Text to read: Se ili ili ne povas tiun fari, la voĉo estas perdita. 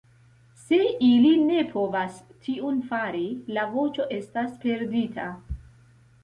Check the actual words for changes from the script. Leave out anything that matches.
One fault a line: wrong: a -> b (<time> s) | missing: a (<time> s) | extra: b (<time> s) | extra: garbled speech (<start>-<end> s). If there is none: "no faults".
missing: ili (1.3 s)